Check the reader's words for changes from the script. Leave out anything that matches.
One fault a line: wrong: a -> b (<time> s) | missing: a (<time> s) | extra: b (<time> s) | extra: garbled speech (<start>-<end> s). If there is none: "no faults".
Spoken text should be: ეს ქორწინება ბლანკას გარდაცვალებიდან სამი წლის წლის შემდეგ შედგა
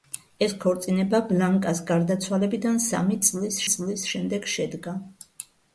no faults